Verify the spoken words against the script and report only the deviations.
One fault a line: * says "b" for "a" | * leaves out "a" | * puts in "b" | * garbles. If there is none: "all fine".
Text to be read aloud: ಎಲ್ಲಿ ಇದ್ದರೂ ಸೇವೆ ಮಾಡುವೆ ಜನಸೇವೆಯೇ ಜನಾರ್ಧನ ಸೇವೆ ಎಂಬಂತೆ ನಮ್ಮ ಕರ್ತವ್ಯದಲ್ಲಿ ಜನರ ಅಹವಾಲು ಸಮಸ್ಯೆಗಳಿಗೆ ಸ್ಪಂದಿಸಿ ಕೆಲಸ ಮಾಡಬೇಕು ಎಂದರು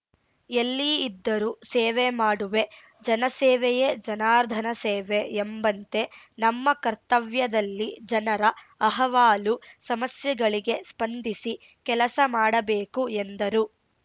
all fine